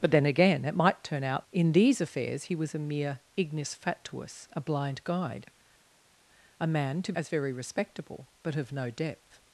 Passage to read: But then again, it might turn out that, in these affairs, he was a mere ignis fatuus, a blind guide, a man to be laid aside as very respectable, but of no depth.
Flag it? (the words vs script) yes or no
yes